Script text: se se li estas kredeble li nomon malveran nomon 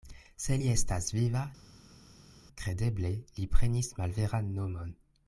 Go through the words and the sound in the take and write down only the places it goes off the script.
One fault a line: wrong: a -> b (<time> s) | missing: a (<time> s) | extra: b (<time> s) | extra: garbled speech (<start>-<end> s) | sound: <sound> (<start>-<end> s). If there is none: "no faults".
missing: se (0.6 s)
extra: viva (1.2 s)
wrong: nomon -> prenis (3.6 s)